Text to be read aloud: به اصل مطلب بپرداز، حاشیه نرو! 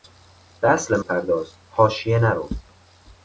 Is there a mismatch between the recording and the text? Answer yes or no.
yes